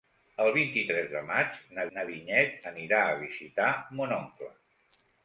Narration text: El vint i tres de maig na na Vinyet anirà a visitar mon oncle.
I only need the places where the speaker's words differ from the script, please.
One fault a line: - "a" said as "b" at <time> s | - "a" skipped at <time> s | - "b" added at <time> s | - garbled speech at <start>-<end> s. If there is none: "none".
none